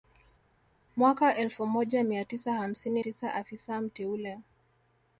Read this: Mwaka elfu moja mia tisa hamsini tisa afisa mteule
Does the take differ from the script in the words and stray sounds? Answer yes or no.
no